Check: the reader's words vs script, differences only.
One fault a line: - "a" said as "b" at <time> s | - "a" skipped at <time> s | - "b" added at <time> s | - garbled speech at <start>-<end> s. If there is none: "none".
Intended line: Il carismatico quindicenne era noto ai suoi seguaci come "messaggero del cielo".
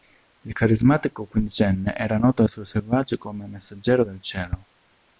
none